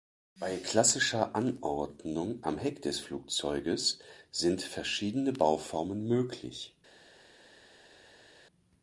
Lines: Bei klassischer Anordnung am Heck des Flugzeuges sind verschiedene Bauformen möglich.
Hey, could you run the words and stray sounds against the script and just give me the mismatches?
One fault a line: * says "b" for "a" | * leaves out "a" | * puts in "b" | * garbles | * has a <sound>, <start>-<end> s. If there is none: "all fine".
all fine